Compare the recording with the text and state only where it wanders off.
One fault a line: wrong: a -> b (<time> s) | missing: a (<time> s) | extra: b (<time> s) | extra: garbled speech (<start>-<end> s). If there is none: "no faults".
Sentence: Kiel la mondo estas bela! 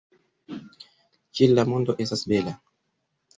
no faults